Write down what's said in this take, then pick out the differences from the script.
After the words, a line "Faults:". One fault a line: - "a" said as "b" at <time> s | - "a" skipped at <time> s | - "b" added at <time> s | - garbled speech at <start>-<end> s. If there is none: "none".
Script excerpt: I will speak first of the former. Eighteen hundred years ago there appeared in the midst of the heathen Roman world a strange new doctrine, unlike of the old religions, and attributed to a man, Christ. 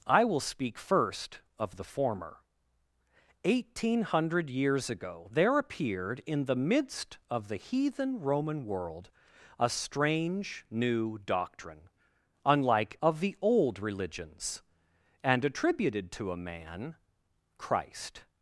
I will speak first of the former. Eighteen hundred years ago there appeared in the midst of the heathen Roman world a strange new doctrine, unlike of the old religions, and attributed to a man, Christ.
Faults:
none